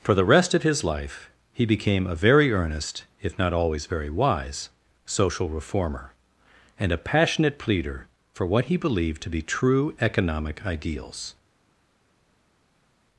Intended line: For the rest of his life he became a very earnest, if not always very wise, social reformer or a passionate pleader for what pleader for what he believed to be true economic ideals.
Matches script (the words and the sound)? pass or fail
fail